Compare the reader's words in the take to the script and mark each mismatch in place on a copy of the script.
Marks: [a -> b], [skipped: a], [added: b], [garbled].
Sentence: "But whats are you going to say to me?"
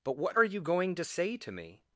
"But [whats -> what] are you going to say to me?"